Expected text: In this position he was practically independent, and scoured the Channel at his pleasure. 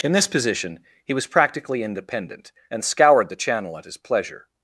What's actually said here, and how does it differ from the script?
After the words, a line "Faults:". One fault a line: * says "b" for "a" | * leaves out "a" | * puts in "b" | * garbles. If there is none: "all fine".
In this position he was practically independent, and scoured the Channel at his pleasure.
Faults:
all fine